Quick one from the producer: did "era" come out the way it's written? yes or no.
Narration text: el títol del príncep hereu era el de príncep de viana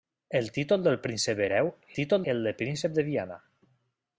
no